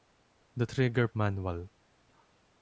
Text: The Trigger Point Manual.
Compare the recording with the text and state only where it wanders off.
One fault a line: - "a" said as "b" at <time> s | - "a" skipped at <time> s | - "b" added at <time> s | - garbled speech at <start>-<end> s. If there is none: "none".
- "Point" skipped at 1.1 s